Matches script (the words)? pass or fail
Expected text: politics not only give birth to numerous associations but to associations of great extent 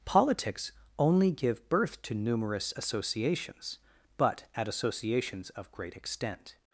fail